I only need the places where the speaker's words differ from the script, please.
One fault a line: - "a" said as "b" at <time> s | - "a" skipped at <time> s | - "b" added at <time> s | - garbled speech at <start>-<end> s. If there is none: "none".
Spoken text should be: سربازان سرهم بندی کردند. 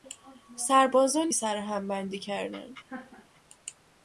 none